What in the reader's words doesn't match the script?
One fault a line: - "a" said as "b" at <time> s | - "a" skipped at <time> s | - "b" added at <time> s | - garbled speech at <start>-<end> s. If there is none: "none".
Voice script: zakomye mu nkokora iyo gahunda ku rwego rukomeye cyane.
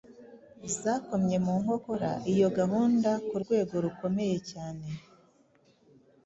none